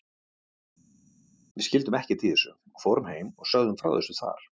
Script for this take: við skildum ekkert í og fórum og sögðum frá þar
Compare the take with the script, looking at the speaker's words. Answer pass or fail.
fail